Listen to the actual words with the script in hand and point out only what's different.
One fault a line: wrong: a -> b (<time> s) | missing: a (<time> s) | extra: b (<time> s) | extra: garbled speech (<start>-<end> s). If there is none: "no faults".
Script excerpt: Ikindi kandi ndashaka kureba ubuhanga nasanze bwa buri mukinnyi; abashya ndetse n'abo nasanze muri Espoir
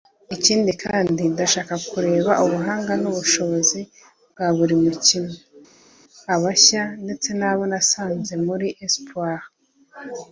wrong: nasanze -> n'ubushobozi (3.0 s)